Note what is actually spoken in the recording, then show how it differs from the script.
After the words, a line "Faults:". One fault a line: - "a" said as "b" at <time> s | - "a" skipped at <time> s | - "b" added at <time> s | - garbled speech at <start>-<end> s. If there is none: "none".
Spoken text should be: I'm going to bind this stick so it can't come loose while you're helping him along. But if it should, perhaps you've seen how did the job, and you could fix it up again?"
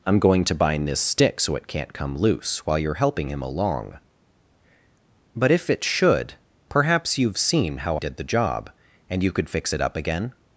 I'm going to bind this stick so it can't come loose while you're helping him along. But if it should, perhaps you've seen how did the job, and you could fix it up again?"
Faults:
none